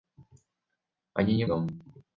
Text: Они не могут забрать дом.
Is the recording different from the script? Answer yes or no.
yes